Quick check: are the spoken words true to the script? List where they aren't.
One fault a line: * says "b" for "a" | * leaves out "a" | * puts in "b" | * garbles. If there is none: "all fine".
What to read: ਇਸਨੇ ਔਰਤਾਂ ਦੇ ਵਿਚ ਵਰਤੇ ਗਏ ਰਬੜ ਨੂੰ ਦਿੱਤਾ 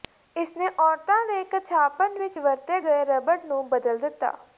* puts in "ਕੱਛਾਪਨ"
* puts in "ਬਦਲ"